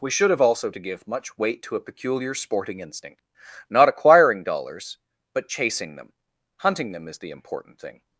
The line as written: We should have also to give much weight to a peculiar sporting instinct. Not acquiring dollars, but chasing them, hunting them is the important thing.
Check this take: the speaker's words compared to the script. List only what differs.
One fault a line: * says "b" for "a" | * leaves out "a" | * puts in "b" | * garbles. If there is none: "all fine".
all fine